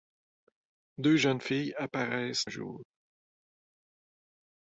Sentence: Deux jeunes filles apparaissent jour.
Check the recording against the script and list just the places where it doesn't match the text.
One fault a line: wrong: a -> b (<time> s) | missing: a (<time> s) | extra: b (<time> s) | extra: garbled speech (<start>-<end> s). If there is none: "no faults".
no faults